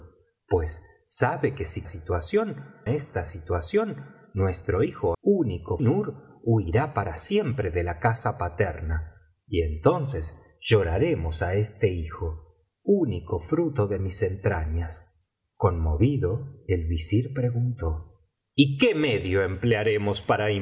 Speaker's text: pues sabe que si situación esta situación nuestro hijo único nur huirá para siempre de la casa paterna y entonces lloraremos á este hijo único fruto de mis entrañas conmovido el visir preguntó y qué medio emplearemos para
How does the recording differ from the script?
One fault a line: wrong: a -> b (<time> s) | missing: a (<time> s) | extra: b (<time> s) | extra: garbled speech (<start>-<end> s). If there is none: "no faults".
no faults